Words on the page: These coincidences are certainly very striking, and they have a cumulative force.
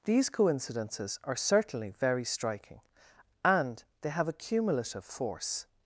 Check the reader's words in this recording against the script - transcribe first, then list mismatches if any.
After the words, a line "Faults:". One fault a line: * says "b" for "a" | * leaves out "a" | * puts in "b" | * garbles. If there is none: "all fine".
These coincidences are certainly very striking, and they have a cumulative force.
Faults:
all fine